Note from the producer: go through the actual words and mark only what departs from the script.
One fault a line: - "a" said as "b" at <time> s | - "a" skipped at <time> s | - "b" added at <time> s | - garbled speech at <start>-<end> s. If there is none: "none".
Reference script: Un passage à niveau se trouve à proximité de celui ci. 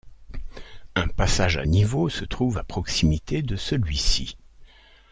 none